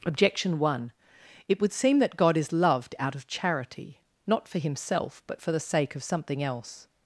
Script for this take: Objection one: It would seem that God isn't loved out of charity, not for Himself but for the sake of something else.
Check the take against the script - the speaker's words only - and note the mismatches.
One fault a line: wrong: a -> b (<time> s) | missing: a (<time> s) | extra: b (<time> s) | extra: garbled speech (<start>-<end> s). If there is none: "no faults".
wrong: isn't -> is (2.4 s)